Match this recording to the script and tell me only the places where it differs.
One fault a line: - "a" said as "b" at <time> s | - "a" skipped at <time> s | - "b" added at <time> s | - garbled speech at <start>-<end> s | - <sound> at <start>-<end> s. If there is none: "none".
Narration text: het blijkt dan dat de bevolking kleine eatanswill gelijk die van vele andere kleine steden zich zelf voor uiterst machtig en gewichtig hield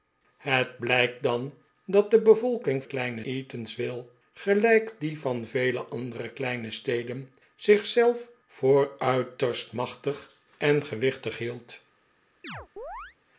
- chirp at 12.4-13.2 s